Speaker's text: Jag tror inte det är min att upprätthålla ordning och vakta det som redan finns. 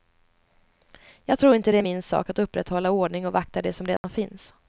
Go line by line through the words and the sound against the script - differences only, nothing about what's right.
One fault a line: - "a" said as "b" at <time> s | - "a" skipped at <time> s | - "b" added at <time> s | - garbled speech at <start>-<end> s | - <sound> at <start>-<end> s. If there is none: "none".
- "sak" added at 2.0 s
- dropout at 4.0-4.0 s